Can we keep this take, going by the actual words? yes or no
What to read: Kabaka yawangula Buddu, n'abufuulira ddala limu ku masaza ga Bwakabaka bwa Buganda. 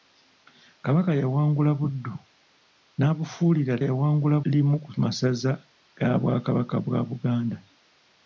no